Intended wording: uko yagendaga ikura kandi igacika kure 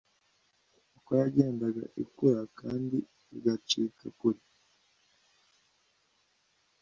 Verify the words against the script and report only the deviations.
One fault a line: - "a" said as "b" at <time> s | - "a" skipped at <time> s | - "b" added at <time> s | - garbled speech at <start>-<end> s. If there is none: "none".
none